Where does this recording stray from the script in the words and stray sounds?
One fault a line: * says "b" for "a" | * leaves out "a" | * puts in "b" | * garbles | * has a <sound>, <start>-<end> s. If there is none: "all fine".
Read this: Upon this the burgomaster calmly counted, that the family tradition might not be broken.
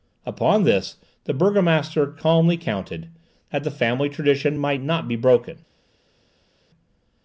all fine